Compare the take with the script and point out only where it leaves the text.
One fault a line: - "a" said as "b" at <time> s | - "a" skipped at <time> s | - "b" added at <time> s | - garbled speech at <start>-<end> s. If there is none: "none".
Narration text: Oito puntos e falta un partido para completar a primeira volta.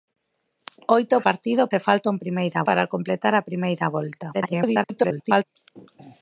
- "puntos" said as "partido" at 1.3 s
- "partido" said as "primeira" at 2.2 s
- garbled speech at 4.3-5.4 s